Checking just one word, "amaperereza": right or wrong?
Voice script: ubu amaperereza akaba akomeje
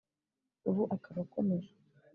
wrong